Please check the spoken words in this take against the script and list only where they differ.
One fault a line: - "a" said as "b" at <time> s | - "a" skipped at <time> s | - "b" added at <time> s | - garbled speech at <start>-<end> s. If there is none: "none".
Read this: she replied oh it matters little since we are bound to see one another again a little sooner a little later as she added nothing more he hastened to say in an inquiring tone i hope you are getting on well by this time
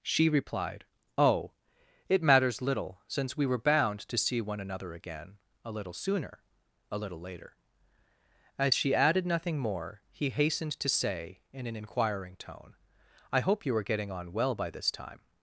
- "are" said as "were" at 3.4 s